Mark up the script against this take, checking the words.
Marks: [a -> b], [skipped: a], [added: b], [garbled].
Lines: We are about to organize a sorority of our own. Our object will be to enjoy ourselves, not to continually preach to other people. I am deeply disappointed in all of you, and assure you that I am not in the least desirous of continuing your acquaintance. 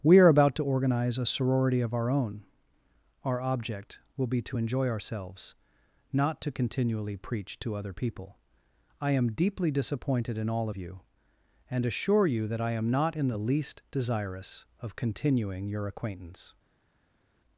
We are about to organize a sorority of our own. Our object will be to enjoy ourselves, not to continually preach to other people. I am deeply disappointed in all of you, and assure you that I am not in the least desirous of continuing your acquaintance.